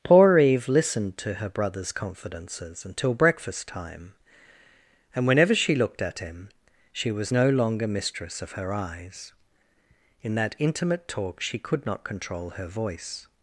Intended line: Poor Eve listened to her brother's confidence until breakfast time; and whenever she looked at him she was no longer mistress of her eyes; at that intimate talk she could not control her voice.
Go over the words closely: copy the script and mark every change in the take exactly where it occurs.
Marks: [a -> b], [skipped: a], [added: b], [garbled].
Poor Eve listened to her brother's [confidence -> confidences] until breakfast time; and whenever she looked at him she was no longer mistress of her eyes; [at -> in] that intimate talk she could not control her voice.